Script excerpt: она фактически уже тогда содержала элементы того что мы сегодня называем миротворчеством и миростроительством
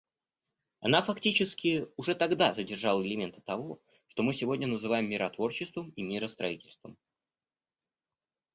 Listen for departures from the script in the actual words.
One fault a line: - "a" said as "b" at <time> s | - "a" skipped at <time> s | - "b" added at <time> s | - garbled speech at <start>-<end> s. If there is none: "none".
none